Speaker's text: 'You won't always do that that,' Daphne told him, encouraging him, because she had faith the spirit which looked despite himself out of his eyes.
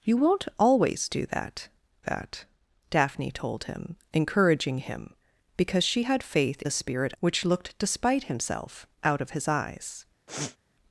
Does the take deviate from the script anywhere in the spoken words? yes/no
no